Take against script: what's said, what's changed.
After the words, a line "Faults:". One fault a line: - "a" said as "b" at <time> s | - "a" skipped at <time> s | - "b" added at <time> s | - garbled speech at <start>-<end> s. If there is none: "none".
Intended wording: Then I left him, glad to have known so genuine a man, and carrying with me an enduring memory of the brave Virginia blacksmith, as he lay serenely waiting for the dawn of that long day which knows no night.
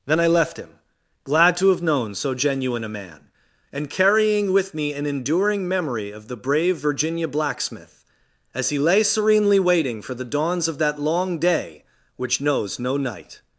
Then I left him, glad to have known so genuine a man, and carrying with me an enduring memory of the brave Virginia blacksmith, as he lay serenely waiting for the dawns of that long day which knows no night.
Faults:
- "dawn" said as "dawns" at 10.2 s